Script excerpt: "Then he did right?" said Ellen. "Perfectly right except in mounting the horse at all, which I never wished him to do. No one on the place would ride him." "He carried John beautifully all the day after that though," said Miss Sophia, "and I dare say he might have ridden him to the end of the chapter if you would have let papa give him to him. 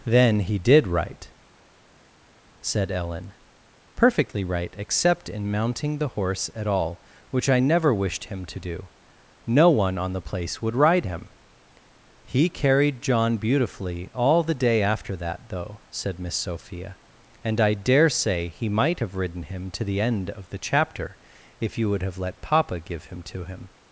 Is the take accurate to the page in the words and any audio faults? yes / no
yes